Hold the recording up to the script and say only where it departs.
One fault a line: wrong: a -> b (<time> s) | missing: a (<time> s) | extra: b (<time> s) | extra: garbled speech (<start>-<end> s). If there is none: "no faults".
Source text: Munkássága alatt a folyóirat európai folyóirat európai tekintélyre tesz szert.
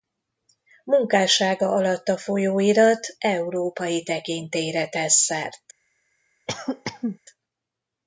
missing: folyóirat európai (4.0 s)